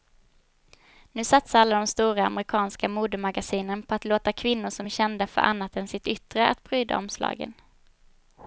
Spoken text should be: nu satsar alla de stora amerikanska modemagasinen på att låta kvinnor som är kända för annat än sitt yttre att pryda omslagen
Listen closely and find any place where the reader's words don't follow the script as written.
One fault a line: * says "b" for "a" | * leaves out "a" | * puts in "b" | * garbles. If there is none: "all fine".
all fine